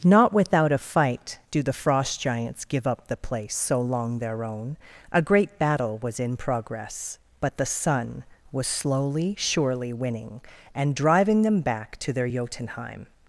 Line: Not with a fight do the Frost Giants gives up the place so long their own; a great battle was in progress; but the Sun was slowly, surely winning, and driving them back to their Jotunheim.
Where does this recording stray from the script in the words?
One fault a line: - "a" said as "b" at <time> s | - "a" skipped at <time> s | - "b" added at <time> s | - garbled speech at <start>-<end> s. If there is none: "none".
- "with" said as "without" at 0.3 s
- "gives" said as "give" at 2.6 s